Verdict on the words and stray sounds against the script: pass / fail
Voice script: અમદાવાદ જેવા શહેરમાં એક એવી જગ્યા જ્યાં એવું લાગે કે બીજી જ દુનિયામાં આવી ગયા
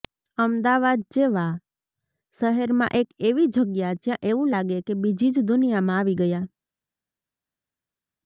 pass